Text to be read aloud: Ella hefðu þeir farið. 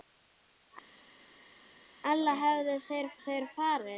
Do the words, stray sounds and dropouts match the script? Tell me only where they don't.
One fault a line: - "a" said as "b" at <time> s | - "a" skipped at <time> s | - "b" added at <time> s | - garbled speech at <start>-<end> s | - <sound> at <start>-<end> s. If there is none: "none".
- "þeir" added at 3.2 s